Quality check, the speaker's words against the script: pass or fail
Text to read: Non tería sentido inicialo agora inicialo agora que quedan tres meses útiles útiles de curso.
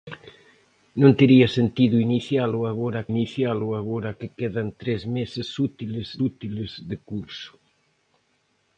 pass